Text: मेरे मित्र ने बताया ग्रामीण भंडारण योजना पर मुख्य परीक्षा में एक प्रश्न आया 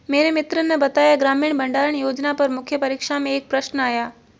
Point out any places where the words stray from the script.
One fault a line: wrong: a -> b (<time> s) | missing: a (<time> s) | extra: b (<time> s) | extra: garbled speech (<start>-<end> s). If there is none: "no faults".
no faults